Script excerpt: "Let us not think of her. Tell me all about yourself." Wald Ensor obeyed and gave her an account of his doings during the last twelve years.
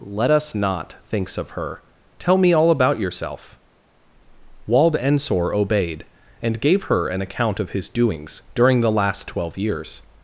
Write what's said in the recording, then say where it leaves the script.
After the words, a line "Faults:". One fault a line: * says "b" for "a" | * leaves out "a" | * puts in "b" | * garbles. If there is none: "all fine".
"Let us not thinks of her. Tell me all about yourself." Wald Ensor obeyed and gave her an account of his doings during the last twelve years.
Faults:
* says "thinks" for "think"